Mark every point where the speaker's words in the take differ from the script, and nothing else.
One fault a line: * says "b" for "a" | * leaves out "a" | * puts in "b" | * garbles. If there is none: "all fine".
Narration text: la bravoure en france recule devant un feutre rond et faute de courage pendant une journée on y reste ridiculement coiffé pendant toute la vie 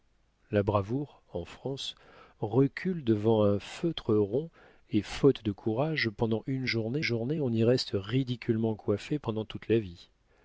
* puts in "journée"